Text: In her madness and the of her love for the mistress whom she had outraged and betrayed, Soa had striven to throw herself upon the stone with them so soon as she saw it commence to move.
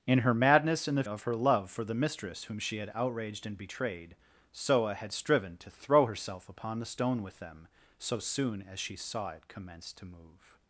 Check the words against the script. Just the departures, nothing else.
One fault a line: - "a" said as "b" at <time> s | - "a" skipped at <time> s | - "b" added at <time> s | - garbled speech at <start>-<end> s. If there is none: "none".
none